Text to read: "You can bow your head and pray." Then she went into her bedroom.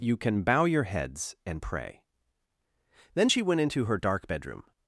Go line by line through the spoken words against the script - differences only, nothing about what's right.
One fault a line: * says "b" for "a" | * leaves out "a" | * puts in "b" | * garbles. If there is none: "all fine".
* says "heads" for "head"
* puts in "dark"